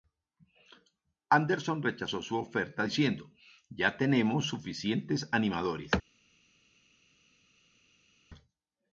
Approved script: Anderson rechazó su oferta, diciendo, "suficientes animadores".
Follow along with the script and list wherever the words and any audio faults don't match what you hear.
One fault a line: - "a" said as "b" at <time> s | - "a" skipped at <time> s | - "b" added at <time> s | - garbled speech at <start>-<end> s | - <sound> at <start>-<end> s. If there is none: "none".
- "ya tenemos" added at 3.7 s